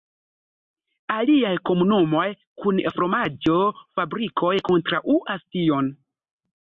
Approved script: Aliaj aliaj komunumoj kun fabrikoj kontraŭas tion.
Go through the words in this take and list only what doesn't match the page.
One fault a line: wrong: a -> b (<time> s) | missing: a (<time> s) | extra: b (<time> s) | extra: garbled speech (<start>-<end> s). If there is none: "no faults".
missing: aliaj (1.5 s)
extra: fromaĝo (2.9 s)